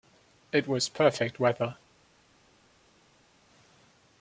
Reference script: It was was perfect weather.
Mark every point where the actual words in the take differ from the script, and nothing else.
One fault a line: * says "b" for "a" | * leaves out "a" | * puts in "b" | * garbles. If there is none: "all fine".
* leaves out "was"